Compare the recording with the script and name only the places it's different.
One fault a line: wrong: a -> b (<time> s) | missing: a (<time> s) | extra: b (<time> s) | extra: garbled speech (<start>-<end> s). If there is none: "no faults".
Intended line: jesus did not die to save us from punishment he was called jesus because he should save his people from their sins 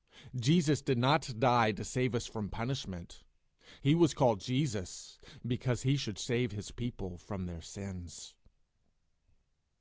no faults